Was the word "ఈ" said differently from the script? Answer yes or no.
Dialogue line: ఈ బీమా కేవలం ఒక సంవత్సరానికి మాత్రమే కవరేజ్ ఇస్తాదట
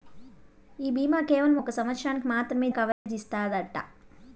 no